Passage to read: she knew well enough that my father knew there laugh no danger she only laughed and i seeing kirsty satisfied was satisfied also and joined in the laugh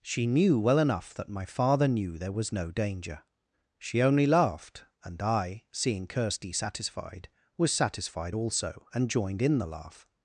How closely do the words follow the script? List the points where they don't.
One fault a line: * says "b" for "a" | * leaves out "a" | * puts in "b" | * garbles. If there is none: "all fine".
* says "was" for "laugh"